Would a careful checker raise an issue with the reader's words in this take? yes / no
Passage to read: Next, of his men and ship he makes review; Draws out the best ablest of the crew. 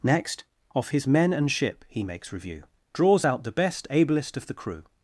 no